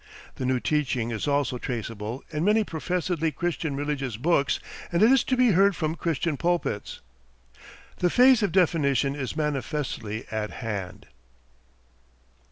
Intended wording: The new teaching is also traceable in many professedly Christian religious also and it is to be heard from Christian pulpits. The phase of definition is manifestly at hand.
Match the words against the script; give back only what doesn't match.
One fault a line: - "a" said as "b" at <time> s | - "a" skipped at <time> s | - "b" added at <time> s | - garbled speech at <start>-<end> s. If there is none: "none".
- "also" said as "books" at 4.2 s